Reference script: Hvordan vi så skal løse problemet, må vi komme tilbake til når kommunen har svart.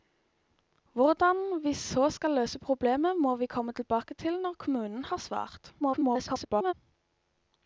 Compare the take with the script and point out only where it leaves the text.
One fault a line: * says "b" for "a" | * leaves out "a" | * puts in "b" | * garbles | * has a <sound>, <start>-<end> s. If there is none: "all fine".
* garbles